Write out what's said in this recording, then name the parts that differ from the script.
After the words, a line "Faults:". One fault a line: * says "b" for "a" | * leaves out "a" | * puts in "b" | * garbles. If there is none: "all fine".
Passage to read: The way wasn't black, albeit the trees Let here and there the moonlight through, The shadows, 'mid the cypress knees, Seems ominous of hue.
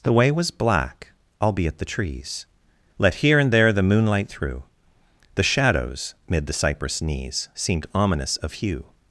The way was black, albeit the trees Let here and there the moonlight through, The shadows, 'mid the cypress knees, Seemed ominous of hue.
Faults:
* says "was" for "wasn't"
* says "Seemed" for "Seems"